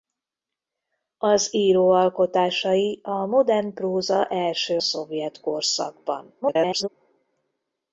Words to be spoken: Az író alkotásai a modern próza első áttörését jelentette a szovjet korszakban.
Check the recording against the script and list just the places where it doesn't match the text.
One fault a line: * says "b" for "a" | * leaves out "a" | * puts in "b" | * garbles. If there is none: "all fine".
* leaves out "áttörését jelentette a"
* garbles